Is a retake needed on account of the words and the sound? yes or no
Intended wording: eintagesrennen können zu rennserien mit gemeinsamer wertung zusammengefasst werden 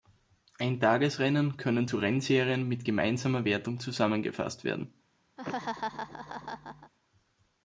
yes